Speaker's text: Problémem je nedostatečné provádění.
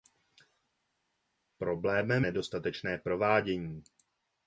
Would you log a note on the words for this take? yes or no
yes